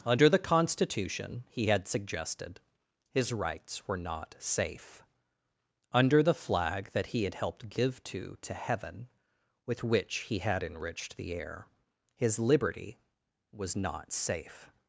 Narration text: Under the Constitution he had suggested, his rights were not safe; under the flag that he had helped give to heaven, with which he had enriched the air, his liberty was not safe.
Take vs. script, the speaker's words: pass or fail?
fail